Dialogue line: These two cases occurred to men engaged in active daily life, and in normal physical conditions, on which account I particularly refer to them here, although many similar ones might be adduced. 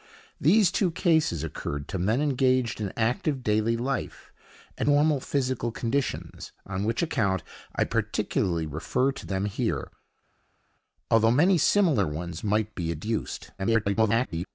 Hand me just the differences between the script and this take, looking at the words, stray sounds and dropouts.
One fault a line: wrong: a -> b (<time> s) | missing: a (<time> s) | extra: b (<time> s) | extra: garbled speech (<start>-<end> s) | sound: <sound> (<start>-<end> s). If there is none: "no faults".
missing: in (4.9 s)
extra: garbled speech (13.6-14.5 s)